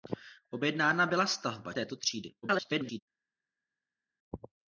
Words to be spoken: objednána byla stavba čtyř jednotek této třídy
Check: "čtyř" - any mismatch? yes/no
yes